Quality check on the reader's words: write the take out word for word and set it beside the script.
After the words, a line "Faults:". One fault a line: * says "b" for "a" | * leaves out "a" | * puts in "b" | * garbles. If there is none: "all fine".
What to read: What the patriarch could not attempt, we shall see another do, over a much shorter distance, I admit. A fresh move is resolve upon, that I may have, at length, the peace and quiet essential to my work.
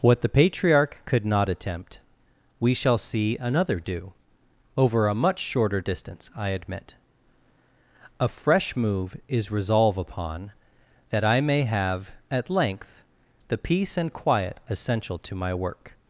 What the patriarch could not attempt, we shall see another do, over a much shorter distance, I admit. A fresh move is resolve upon, that I may have, at length, the peace and quiet essential to my work.
Faults:
all fine